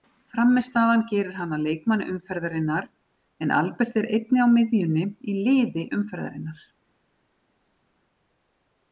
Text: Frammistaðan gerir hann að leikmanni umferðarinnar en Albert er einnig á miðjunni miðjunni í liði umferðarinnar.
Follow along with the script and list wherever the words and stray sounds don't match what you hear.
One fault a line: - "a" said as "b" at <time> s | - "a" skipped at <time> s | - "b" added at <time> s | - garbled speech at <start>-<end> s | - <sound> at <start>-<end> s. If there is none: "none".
- "miðjunni" skipped at 5.0 s